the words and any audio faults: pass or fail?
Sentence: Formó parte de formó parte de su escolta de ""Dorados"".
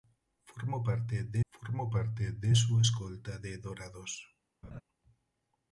fail